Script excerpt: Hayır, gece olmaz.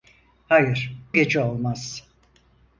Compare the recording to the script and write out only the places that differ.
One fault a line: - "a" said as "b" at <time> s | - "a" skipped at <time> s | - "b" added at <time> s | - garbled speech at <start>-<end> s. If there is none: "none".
none